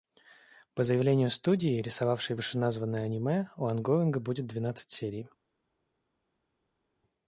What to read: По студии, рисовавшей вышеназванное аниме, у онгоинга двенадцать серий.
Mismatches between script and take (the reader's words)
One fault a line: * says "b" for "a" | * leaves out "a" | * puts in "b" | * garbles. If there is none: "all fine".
* puts in "заявлению"
* puts in "будет"